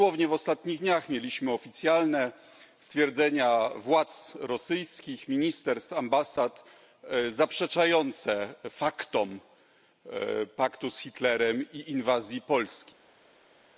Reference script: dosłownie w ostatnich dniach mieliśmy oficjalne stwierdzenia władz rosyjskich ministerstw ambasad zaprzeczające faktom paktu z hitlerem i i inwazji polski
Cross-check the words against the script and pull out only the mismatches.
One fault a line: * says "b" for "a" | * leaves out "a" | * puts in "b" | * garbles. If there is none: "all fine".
* leaves out "i"